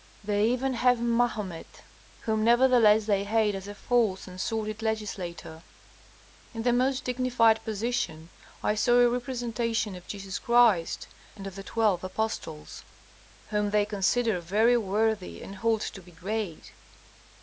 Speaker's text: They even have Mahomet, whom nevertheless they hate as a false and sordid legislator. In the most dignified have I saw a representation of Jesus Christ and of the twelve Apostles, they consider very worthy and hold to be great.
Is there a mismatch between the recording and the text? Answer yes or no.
yes